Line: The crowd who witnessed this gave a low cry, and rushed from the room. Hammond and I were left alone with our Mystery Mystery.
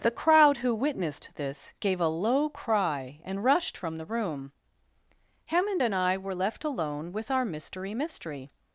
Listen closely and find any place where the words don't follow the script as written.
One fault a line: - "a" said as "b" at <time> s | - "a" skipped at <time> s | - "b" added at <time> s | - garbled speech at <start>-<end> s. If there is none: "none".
none